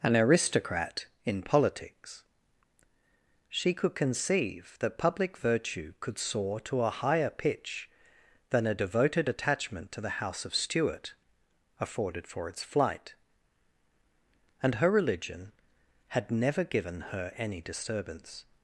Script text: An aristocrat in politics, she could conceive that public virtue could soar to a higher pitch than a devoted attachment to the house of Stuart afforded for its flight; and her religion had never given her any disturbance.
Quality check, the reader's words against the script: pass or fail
pass